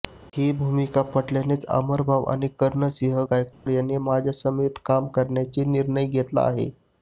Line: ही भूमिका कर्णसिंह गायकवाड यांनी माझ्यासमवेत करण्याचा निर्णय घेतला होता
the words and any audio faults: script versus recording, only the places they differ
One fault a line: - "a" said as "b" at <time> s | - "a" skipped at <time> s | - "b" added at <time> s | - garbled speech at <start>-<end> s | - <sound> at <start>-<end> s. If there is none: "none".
- "पटल्यानेच अमरभाऊ आणि" added at 1.1 s
- dropout at 3.5-3.7 s
- "काम" added at 4.8 s
- "होता" said as "आहे" at 6.5 s